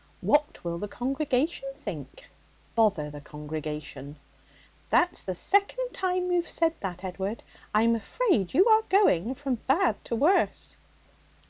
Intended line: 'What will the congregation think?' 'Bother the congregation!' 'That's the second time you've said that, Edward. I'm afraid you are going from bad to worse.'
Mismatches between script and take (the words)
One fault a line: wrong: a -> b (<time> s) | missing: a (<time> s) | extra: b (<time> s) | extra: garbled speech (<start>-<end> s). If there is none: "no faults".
no faults